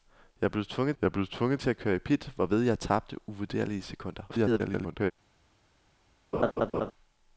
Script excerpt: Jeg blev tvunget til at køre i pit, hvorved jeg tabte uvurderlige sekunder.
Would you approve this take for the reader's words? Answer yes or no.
no